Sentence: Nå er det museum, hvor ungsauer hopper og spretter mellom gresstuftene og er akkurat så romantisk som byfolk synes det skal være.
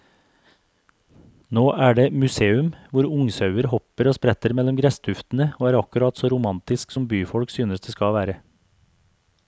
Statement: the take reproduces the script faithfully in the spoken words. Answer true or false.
true